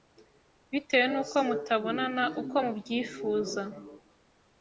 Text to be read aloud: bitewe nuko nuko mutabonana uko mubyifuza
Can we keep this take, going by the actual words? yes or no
no